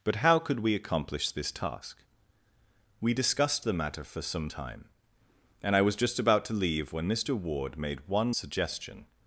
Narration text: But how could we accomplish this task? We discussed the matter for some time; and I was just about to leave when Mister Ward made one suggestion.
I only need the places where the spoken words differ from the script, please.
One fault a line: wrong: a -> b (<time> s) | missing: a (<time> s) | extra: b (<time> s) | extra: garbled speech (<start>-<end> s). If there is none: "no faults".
no faults